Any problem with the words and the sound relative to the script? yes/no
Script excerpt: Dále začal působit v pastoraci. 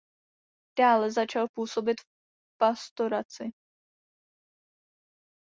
no